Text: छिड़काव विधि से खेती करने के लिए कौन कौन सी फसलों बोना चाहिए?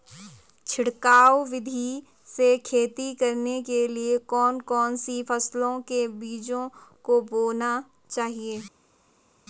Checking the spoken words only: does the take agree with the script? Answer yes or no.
no